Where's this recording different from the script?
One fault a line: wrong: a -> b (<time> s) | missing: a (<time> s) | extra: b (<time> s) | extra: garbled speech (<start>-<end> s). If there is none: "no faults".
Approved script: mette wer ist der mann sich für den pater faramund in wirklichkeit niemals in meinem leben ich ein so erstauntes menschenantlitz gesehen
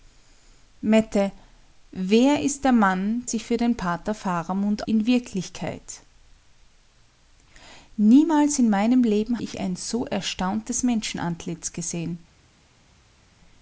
no faults